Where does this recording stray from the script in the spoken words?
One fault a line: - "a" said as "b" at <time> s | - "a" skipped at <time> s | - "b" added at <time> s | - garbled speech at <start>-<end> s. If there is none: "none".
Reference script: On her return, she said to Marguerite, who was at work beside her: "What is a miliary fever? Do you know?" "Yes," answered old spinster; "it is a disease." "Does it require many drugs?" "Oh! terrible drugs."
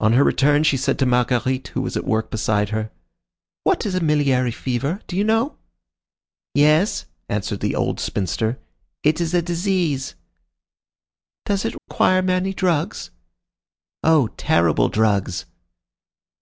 - "the" added at 7.6 s